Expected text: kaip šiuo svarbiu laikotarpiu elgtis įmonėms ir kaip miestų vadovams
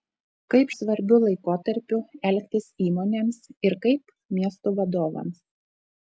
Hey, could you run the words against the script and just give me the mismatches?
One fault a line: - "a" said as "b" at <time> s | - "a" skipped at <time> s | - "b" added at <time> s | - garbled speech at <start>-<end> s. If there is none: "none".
- "šiuo" skipped at 0.7 s